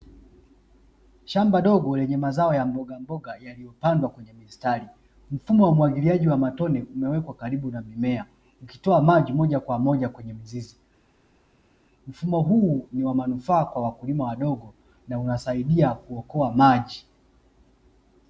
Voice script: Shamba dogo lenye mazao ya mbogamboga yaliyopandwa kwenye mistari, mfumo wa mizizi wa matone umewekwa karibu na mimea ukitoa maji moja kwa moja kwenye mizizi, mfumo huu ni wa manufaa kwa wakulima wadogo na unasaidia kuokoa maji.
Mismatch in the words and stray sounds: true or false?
true